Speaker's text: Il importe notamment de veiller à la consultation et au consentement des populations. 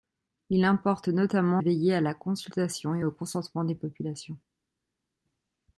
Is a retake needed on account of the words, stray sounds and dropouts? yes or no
yes